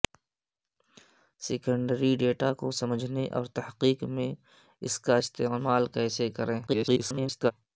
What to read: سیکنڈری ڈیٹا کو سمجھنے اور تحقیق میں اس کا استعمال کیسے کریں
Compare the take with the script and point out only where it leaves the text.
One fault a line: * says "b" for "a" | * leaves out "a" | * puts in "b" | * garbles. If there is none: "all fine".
* garbles